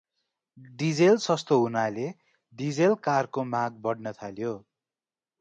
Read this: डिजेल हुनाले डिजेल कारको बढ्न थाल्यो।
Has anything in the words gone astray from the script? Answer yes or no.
yes